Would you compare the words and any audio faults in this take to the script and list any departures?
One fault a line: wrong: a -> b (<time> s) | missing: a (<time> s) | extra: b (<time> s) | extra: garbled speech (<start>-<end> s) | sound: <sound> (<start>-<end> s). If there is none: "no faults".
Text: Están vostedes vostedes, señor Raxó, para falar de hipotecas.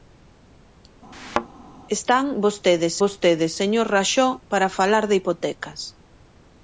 sound: thud (1.1-1.5 s)